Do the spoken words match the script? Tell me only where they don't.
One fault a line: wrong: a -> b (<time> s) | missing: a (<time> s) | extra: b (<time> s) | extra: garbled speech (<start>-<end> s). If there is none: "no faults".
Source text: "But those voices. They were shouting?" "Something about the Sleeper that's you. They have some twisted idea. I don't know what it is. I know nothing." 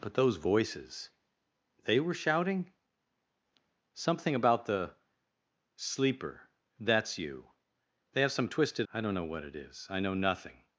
missing: idea (8.9 s)